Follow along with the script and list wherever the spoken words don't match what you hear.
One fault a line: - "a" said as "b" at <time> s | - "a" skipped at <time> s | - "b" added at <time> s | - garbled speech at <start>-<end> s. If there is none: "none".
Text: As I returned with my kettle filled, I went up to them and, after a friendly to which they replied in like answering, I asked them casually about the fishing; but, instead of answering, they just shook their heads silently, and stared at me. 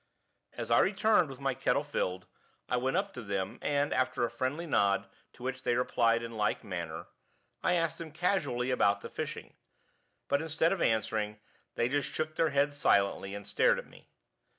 - "nod" added at 4.7 s
- "answering" said as "manner" at 6.6 s